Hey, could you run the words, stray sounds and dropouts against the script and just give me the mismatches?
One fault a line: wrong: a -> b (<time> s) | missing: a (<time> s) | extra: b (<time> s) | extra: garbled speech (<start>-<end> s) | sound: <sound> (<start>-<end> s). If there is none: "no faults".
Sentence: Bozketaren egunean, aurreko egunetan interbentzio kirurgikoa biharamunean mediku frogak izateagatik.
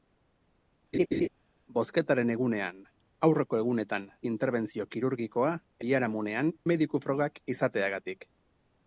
sound: laugh (0.9-1.3 s)